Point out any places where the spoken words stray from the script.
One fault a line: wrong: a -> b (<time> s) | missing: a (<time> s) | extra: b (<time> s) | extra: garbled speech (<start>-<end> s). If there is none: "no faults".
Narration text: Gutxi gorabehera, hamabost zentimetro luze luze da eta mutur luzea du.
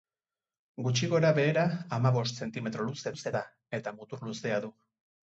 no faults